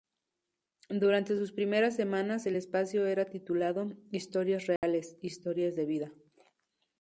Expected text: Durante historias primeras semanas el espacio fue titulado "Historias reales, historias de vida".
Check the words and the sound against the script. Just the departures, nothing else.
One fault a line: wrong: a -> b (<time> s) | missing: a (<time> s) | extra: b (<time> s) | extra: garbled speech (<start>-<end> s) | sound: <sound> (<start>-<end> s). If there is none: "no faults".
wrong: historias -> sus (1.4 s)
wrong: fue -> era (3.1 s)
sound: dropout (4.8-4.8 s)